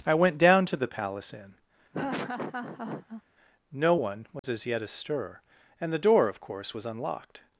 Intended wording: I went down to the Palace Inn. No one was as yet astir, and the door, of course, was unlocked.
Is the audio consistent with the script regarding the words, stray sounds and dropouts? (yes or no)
no